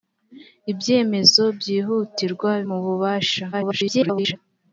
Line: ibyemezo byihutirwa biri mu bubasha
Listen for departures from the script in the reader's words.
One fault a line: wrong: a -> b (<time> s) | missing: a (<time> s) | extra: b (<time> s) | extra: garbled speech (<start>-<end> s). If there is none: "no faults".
missing: biri (2.5 s)
extra: garbled speech (3.5-4.4 s)